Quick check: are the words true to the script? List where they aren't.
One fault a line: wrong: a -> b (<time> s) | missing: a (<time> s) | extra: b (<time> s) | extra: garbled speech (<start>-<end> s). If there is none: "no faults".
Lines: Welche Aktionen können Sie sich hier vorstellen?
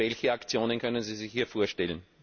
no faults